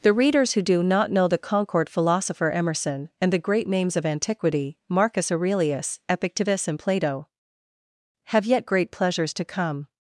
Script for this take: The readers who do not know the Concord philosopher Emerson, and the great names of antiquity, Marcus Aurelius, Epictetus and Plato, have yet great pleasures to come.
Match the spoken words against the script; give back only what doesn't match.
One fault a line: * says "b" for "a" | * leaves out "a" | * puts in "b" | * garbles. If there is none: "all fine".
all fine